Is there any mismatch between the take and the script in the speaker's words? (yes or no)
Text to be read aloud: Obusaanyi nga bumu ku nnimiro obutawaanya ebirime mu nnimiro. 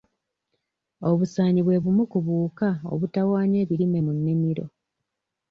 yes